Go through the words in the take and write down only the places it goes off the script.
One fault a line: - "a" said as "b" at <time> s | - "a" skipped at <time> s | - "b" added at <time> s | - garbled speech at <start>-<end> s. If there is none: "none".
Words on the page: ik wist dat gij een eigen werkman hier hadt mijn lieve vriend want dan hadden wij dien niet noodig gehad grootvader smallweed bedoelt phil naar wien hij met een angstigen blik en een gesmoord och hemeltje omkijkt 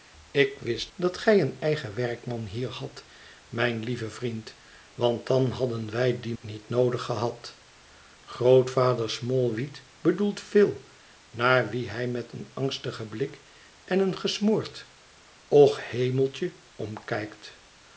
none